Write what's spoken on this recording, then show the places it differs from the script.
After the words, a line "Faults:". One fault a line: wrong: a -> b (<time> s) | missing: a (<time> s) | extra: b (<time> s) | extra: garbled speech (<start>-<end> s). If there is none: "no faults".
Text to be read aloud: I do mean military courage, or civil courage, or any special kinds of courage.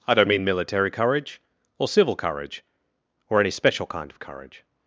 I don't mean military courage, or civil courage, or any special kind of courage.
Faults:
wrong: do -> don't (0.1 s)
wrong: kinds -> kind (3.9 s)